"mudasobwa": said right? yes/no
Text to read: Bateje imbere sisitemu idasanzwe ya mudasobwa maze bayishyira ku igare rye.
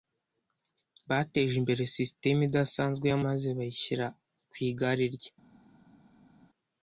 no